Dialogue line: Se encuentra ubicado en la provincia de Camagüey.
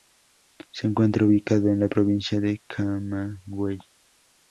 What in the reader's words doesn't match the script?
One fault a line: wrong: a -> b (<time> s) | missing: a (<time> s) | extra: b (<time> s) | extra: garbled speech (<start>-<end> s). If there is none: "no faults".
no faults